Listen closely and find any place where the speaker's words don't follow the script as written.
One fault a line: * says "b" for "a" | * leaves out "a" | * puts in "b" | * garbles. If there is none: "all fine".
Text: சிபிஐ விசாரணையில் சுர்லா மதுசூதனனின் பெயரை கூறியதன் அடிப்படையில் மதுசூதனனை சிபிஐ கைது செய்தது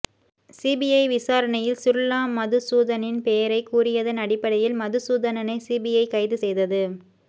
all fine